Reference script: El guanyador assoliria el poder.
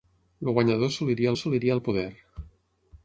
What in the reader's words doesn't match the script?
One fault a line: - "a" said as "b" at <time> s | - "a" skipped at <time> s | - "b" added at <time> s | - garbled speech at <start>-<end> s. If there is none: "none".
- "assoliria" added at 1.4 s